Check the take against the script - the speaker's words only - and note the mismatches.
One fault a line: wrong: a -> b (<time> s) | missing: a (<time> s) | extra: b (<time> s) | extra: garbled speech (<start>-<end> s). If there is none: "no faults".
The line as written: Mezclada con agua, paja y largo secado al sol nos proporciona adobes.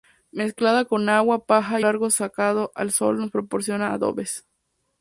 no faults